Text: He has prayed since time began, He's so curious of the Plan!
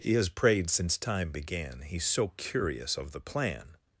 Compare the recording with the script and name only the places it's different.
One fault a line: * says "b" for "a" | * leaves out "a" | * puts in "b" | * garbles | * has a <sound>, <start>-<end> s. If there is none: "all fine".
all fine